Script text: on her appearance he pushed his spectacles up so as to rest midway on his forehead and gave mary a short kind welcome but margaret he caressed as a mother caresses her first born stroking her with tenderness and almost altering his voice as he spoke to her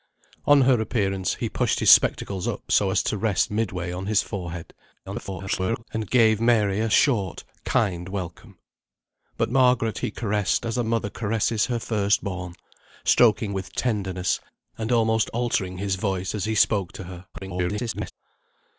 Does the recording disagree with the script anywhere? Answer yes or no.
yes